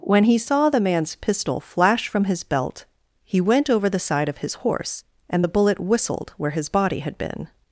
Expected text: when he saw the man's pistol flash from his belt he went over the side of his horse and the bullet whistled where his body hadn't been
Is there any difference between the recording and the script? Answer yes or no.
yes